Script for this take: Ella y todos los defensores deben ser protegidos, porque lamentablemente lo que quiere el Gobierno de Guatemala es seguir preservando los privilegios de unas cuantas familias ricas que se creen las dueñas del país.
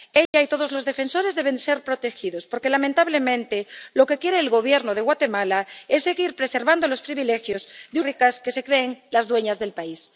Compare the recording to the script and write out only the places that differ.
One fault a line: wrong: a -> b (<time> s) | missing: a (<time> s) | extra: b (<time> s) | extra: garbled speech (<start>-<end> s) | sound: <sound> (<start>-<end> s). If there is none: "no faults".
sound: dropout (0.3-0.3 s)
missing: unas cuantas familias (8.0 s)